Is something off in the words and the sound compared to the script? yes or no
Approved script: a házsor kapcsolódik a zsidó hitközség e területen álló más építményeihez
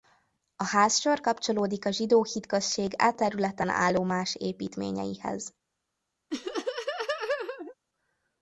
yes